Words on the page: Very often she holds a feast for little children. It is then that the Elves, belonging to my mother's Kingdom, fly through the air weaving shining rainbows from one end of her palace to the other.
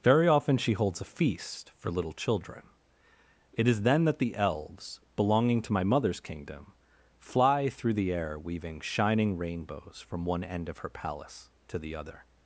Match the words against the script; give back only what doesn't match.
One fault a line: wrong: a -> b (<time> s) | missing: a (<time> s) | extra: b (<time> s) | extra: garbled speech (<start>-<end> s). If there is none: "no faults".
no faults